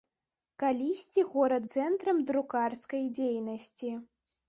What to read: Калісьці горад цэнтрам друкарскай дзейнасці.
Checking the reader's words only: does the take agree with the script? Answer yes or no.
yes